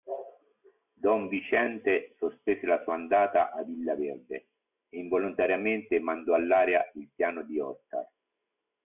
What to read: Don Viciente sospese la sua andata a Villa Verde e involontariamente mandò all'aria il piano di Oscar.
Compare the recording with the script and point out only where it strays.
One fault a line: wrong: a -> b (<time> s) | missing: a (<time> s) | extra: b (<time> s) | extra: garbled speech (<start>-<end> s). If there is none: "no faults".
no faults